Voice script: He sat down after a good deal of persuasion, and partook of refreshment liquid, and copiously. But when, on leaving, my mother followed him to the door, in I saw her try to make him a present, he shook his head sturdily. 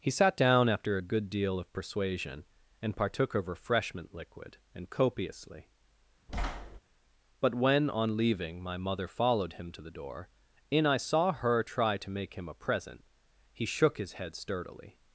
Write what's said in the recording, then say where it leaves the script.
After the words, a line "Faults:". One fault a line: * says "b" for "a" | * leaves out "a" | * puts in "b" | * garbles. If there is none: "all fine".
He sat down after a good deal of persuasion, and partook of refreshment liquid, and copiously. But when, on leaving, my mother followed him to the door, in I saw her try to make him a present, he shook his head sturdily.
Faults:
all fine